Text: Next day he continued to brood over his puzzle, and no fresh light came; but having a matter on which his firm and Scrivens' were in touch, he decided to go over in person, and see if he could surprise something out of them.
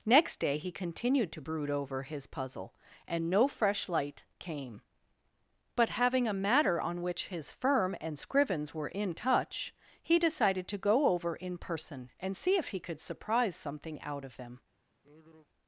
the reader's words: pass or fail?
pass